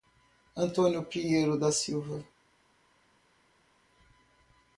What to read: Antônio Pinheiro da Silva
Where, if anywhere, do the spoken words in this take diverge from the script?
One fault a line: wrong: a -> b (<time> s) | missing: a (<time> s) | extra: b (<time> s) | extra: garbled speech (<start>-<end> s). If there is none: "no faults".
no faults